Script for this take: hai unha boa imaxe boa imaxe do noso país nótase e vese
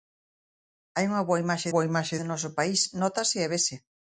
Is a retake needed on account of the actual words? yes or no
no